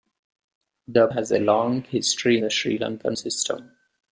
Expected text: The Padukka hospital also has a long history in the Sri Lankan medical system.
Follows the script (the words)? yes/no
no